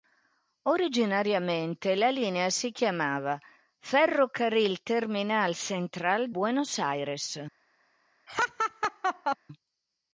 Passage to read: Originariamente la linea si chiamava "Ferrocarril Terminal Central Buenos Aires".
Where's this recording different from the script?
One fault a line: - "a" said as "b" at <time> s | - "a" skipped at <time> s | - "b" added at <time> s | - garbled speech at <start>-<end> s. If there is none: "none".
none